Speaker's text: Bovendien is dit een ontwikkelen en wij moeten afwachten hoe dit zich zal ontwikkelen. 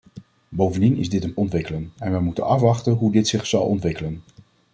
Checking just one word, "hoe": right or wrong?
right